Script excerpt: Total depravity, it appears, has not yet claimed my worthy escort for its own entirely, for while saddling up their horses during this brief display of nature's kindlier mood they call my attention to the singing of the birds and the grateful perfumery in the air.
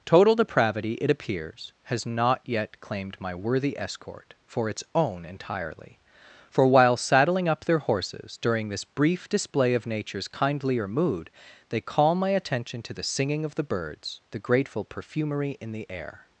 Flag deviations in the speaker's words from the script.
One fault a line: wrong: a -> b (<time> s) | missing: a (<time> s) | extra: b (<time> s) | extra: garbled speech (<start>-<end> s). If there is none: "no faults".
missing: and (14.2 s)